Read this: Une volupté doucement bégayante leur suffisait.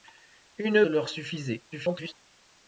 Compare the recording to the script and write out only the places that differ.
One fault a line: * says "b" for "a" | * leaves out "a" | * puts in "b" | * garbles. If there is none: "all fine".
* leaves out "volupté doucement bégayante"
* garbles